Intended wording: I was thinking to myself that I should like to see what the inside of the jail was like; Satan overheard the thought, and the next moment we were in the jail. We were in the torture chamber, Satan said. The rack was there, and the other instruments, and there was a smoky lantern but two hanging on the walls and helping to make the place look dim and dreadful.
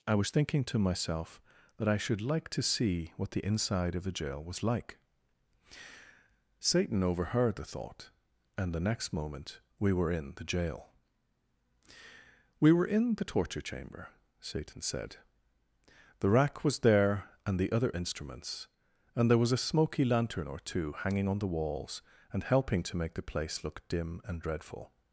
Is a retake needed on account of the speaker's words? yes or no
yes